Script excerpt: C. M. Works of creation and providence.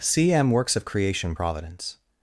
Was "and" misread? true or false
true